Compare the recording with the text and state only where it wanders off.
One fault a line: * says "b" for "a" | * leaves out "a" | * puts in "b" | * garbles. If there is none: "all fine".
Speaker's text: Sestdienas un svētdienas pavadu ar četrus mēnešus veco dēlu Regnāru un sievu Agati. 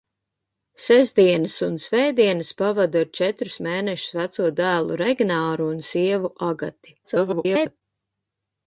* garbles